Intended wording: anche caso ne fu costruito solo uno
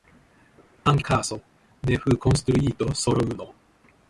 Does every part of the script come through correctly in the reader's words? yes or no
yes